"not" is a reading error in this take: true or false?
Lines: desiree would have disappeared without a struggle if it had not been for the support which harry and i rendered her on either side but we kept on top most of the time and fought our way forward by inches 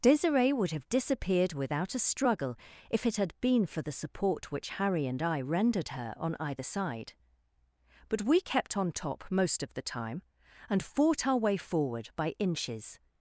true